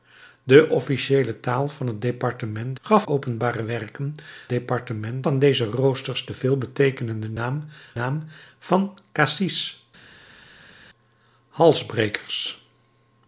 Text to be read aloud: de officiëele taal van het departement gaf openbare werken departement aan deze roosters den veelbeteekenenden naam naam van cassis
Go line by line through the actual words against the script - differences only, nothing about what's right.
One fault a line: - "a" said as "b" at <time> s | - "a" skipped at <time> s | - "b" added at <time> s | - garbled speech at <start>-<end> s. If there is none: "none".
none